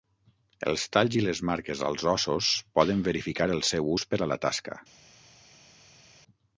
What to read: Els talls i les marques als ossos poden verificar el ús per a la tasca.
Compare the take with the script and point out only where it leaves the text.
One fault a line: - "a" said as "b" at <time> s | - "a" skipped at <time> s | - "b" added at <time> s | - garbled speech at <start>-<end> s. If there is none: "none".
- "seu" added at 3.7 s